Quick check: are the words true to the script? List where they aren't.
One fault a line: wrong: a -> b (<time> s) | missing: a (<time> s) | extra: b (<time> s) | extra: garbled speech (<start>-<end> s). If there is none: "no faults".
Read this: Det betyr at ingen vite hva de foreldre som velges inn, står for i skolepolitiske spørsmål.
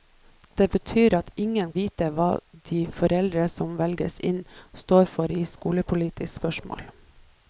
no faults